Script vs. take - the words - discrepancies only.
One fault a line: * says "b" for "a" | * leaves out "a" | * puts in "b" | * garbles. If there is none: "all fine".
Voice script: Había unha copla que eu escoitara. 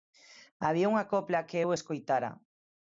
all fine